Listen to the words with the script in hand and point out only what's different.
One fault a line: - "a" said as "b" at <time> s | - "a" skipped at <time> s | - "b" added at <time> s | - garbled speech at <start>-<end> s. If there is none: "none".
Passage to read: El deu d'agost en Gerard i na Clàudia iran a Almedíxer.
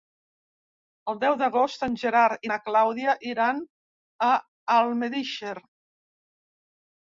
none